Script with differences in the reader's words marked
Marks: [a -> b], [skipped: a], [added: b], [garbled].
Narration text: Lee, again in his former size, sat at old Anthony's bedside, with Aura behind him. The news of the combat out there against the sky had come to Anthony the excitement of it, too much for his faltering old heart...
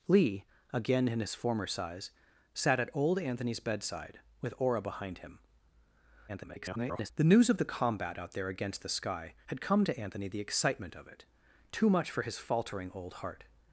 Lee, again in his former size, sat at old Anthony's bedside, with Aura behind him. [garbled] The news of the combat out there against the sky had come to Anthony the excitement of it, too much for his faltering old heart...